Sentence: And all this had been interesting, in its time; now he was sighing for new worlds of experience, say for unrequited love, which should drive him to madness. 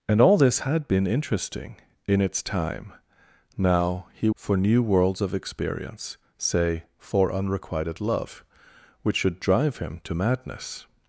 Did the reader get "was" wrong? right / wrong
wrong